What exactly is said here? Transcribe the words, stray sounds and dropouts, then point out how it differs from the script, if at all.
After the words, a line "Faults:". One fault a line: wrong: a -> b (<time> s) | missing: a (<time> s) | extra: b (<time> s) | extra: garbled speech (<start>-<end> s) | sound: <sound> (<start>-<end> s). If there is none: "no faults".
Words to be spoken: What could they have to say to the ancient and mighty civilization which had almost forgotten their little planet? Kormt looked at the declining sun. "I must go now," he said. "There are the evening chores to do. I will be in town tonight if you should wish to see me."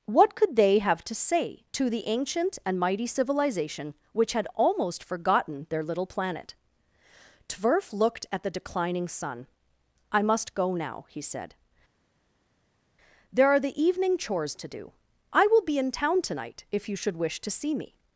What could they have to say to the ancient and mighty civilization which had almost forgotten their little planet? Tverf looked at the declining sun. "I must go now," he said. "There are the evening chores to do. I will be in town tonight if you should wish to see me."
Faults:
wrong: Kormt -> Tverf (7.5 s)